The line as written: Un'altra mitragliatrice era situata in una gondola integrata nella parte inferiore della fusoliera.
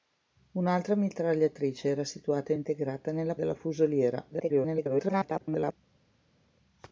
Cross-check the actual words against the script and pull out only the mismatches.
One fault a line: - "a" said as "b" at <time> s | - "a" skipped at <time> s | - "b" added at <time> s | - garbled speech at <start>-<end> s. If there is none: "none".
- "in una gondola" skipped at 2.5 s
- "parte inferiore" skipped at 3.3 s
- garbled speech at 4.3-5.8 s